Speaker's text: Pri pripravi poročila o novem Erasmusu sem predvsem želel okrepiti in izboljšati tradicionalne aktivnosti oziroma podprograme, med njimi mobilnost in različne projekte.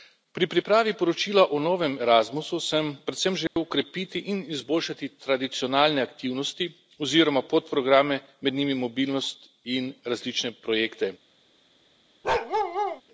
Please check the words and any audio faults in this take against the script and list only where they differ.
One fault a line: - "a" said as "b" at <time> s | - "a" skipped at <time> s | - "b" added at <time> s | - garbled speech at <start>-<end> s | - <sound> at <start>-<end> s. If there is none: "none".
- dropout at 3.5-3.6 s
- bark at 12.2-13.0 s